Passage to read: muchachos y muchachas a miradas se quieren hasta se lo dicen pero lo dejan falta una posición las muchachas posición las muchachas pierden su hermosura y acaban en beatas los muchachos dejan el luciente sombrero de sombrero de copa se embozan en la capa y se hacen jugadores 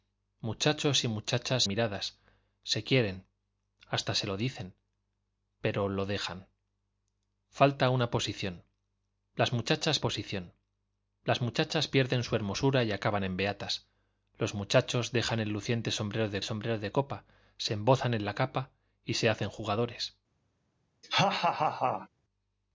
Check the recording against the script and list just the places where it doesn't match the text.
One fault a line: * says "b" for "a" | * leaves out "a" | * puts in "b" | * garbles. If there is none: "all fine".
all fine